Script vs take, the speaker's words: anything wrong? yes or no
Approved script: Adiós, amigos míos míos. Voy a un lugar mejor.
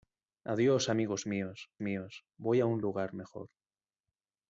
no